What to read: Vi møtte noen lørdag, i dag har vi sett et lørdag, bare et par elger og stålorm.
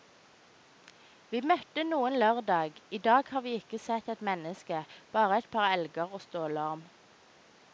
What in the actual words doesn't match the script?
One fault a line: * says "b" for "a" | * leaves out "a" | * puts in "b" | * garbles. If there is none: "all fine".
* puts in "ikke"
* says "menneske" for "lørdag"